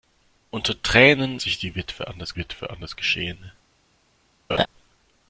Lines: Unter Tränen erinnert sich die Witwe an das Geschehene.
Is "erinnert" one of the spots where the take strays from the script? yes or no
yes